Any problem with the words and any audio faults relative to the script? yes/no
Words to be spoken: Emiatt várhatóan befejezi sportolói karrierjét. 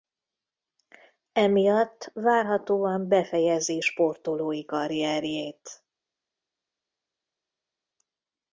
no